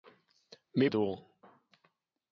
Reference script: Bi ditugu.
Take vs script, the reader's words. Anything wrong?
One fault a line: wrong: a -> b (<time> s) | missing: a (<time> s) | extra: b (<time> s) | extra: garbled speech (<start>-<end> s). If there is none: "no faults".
no faults